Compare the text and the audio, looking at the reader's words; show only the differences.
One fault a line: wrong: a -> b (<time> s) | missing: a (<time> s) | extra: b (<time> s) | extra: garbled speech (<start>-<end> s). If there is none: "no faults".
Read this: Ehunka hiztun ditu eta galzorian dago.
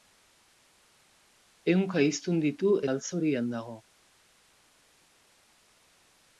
missing: eta (2.7 s)